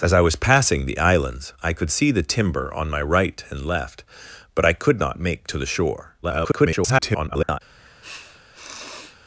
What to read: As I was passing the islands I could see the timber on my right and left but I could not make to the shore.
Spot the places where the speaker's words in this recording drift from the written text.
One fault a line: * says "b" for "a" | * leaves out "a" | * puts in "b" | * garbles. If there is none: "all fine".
* garbles